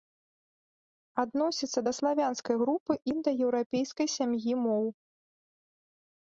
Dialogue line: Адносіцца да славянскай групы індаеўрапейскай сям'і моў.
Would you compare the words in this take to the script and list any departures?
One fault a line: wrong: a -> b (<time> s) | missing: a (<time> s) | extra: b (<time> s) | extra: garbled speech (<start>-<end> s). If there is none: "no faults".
no faults